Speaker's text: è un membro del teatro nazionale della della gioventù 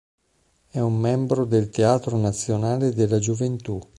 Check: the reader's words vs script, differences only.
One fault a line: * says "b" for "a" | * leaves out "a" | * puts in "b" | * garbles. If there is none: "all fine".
* leaves out "della"